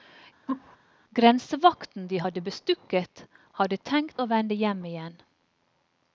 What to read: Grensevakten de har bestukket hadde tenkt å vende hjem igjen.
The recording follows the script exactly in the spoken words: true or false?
false